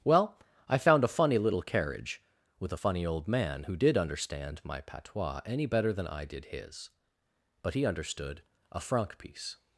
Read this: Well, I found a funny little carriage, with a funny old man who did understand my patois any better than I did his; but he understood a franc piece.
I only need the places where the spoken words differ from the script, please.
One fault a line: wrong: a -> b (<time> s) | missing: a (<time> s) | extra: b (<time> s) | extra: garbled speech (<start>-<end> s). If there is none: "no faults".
no faults